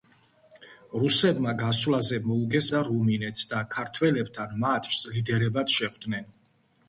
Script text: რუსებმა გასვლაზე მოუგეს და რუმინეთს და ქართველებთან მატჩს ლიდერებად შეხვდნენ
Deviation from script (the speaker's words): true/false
false